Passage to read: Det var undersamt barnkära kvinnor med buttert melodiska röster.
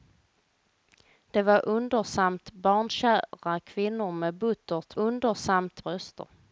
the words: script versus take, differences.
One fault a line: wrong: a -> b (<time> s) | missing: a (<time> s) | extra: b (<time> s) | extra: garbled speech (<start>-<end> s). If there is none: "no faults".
wrong: melodiska -> undersamt (5.0 s)